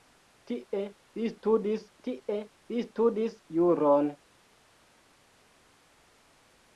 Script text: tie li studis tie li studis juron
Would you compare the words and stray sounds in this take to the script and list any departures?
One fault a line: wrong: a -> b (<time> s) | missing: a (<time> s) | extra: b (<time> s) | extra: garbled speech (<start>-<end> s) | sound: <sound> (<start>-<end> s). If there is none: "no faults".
no faults